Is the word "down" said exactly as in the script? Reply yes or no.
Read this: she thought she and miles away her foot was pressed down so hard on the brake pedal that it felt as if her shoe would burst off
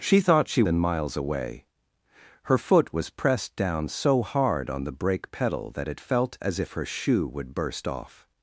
yes